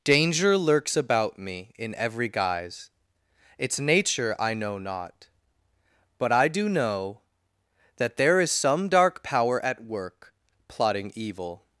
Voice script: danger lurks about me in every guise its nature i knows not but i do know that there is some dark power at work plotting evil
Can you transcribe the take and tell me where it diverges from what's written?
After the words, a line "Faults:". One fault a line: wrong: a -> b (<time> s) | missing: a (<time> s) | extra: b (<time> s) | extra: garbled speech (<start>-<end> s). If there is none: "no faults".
danger lurks about me in every guise its nature i know not but i do know that there is some dark power at work plotting evil
Faults:
wrong: knows -> know (4.5 s)